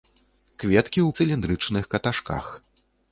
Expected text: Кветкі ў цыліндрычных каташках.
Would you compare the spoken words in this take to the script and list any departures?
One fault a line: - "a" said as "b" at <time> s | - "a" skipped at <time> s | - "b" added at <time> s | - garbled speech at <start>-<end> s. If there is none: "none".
none